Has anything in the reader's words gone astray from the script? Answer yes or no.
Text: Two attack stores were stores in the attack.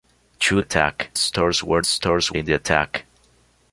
no